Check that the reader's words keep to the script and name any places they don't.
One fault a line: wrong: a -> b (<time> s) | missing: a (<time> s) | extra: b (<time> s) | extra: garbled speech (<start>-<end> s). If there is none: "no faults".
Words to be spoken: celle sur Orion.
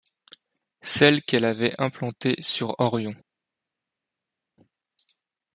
extra: qu'elle avait implantée (1.2 s)